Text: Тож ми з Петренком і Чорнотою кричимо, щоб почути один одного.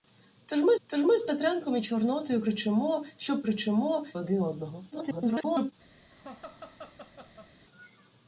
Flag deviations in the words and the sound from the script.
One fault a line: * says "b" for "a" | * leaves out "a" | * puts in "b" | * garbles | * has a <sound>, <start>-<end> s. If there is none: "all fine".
* puts in "тож ми"
* says "кричимо" for "почути"
* garbles
* has a laugh, 6.1-7.5 s